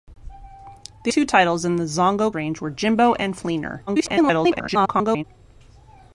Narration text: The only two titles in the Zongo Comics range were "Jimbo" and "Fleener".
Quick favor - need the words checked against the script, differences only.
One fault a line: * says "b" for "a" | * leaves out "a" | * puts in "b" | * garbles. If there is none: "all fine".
* leaves out "only"
* leaves out "Comics"
* garbles